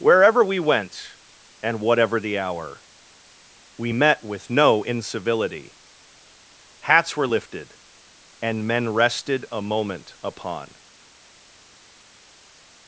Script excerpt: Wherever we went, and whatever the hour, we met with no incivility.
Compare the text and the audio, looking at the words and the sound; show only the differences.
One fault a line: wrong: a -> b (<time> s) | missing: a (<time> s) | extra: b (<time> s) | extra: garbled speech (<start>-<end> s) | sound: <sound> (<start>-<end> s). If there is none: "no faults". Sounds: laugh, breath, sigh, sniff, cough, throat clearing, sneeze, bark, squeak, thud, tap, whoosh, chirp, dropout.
extra: Hats were lifted and men rested a moment upon (6.8 s)